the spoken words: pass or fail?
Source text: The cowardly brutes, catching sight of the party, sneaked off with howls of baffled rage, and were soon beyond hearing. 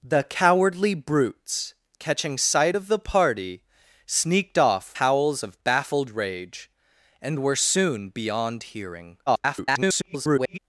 fail